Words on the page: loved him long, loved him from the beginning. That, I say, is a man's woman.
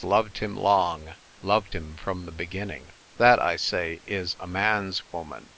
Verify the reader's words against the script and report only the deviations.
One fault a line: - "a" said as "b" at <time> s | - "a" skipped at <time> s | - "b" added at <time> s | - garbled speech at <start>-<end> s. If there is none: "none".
none